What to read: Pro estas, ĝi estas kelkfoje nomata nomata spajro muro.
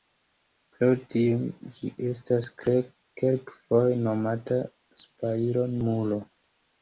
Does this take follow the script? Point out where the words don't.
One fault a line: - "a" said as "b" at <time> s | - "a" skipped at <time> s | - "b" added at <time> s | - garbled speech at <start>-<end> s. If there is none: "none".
- "estas" said as "tio" at 1.1 s
- "nomata" skipped at 4.6 s